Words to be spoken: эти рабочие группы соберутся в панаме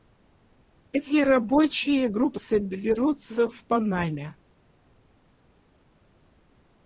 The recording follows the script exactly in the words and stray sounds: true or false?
true